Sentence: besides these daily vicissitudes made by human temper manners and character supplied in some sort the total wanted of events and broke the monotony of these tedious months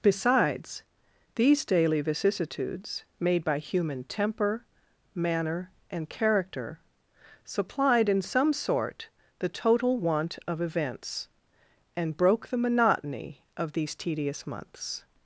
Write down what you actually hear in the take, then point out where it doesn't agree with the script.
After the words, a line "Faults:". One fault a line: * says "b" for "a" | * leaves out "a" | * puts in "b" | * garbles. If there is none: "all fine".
besides these daily vicissitudes made by human temper manner and character supplied in some sort the total want of events and broke the monotony of these tedious months
Faults:
* says "manner" for "manners"
* says "want" for "wanted"